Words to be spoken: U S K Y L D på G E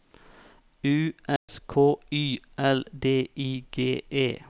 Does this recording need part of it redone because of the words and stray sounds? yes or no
yes